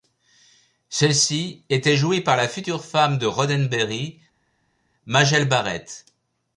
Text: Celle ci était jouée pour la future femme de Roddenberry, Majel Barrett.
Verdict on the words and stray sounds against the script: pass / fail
fail